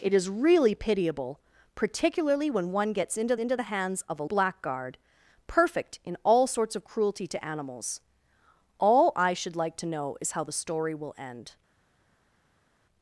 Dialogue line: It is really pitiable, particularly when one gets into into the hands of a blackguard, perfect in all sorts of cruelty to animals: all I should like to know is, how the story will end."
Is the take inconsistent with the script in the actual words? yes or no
no